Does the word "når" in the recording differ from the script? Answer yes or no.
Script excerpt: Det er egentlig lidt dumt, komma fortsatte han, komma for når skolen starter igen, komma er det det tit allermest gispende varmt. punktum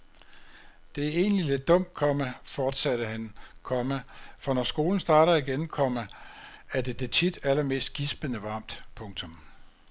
no